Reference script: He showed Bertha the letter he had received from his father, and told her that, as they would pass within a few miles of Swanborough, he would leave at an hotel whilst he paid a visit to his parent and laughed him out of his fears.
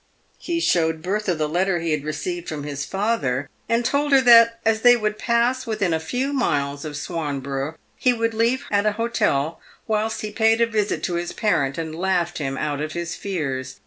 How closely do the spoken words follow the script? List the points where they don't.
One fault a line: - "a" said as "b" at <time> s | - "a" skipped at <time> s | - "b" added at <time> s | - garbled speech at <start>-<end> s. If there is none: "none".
none